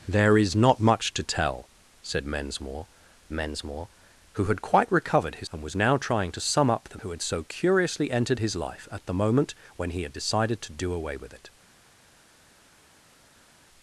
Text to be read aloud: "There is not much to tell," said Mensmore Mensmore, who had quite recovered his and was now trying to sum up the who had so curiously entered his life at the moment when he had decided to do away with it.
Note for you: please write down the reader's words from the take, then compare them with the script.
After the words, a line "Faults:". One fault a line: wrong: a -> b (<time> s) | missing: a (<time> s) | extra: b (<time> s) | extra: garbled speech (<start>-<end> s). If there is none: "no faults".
"There is not much to tell," said Mensmore Mensmore, who had quite recovered his and was now trying to sum up the who had so curiously entered his life at the moment when he had decided to do away with it.
Faults:
no faults